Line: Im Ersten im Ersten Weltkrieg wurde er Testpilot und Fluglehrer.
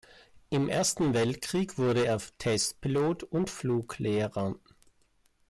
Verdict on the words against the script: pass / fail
fail